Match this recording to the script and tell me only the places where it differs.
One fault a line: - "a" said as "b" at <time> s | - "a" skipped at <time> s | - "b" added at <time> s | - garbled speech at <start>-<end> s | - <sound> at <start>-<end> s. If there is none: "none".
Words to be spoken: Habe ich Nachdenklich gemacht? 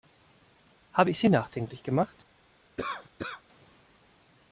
- "Sie" added at 1.2 s
- cough at 2.8-3.4 s